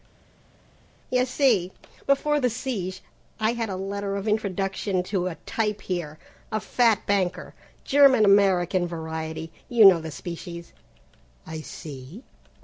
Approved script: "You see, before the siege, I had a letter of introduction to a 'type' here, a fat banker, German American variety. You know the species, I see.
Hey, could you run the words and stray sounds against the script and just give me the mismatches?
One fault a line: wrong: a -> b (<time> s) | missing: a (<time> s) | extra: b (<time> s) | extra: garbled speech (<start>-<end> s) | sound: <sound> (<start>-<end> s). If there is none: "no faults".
no faults